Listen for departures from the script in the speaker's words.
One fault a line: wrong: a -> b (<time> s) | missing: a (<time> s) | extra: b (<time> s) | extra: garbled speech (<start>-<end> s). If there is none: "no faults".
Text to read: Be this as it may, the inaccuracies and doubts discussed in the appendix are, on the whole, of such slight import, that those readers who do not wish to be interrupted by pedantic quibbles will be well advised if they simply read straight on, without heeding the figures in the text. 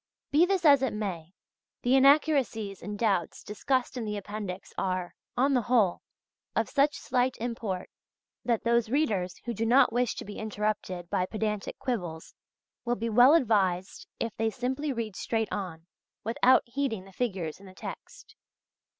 no faults